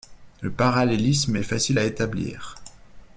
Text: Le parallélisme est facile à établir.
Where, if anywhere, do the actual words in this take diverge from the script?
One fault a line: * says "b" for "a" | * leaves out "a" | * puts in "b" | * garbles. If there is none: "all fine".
all fine